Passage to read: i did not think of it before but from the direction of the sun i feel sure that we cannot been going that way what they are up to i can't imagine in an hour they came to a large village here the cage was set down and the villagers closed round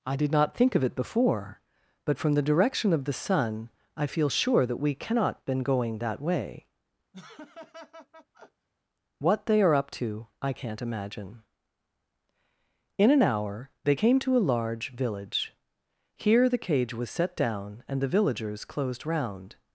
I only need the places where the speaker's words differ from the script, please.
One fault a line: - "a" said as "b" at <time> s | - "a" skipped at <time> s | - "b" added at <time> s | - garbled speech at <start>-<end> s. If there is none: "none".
none